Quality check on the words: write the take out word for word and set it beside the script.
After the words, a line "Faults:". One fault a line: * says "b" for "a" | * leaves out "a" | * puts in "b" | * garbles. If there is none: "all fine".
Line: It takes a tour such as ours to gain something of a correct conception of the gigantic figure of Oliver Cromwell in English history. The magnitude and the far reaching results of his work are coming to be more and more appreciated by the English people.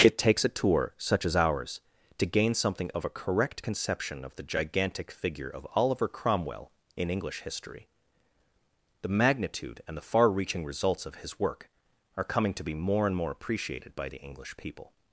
It takes a tour such as ours to gain something of a correct conception of the gigantic figure of Oliver Cromwell in English history. The magnitude and the far reaching results of his work are coming to be more and more appreciated by the English people.
Faults:
all fine